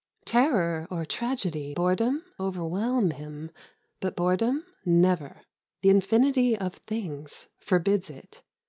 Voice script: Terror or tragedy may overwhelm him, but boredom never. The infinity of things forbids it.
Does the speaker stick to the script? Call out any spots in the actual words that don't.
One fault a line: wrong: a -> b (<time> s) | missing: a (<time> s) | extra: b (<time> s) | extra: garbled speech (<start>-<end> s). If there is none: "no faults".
wrong: may -> boredom (1.7 s)